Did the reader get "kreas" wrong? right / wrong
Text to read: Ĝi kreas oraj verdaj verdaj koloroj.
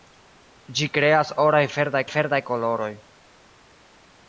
right